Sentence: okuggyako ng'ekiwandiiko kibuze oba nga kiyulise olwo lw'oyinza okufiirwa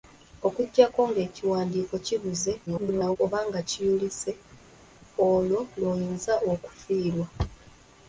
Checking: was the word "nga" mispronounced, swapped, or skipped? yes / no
no